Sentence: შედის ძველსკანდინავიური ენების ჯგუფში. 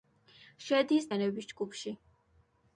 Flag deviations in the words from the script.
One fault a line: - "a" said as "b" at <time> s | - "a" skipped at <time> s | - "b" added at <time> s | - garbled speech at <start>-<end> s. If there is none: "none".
- "ძველსკანდინავიური" skipped at 1.1 s